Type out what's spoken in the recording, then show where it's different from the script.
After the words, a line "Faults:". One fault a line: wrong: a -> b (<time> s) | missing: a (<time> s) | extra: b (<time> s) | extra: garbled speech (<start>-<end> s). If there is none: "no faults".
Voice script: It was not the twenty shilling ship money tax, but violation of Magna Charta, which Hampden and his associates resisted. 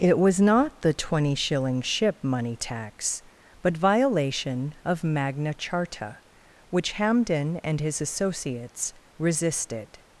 It was not the twenty shilling ship money tax, but violation of Magna Charta, which Hampden and his associates resisted.
Faults:
no faults